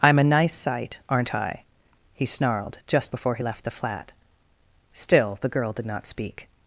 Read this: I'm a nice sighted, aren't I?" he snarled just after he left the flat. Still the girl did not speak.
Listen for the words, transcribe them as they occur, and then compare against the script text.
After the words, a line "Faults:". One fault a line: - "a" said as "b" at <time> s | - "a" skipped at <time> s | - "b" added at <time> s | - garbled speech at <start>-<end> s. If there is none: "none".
I'm a nice sight, aren't I?" he snarled just before he left the flat. Still the girl did not speak.
Faults:
- "sighted" said as "sight" at 0.6 s
- "after" said as "before" at 3.1 s